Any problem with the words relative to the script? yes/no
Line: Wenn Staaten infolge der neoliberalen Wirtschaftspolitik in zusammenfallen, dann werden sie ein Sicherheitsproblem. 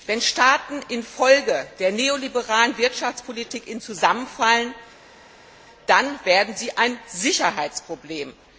no